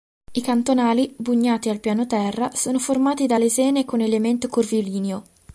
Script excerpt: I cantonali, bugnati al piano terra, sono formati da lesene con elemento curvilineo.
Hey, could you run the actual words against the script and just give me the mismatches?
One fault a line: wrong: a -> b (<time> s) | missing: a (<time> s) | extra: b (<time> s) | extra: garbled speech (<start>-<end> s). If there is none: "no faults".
no faults